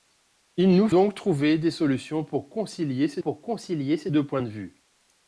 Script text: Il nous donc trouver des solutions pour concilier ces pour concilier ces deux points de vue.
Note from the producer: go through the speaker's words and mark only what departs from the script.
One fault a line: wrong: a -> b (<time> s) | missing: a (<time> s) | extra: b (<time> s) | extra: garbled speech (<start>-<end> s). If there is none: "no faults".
no faults